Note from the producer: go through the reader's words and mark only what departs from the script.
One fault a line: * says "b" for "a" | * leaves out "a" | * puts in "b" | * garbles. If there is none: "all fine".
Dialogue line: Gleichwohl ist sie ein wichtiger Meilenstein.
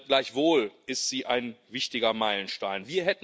all fine